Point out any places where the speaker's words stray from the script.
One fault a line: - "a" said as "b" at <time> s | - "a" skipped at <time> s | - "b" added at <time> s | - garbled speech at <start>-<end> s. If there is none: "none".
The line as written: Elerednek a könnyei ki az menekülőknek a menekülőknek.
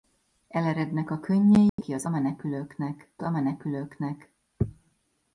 none